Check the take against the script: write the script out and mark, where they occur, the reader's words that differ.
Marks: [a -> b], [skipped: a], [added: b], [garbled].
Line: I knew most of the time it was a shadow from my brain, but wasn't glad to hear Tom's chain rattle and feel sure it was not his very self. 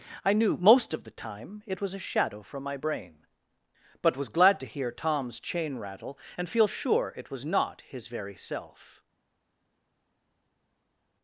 I knew most of the time it was a shadow from my brain, but [wasn't -> was] glad to hear Tom's chain rattle and feel sure it was not his very self.